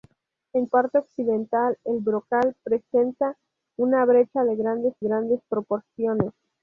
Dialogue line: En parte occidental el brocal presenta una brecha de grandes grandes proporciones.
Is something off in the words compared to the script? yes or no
no